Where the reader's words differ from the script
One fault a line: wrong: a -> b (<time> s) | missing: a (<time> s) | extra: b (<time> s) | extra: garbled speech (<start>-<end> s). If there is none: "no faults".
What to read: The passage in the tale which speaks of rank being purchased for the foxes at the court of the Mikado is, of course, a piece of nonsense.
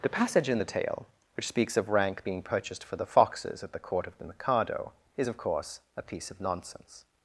no faults